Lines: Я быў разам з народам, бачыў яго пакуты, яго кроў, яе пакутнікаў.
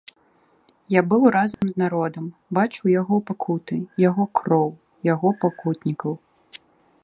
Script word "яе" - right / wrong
wrong